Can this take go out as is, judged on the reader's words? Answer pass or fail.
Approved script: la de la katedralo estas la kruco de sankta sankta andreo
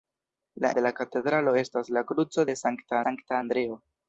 pass